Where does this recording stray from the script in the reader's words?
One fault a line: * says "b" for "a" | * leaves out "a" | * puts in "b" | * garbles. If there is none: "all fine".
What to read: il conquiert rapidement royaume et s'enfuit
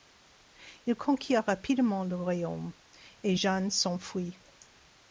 * puts in "le"
* puts in "jeanne"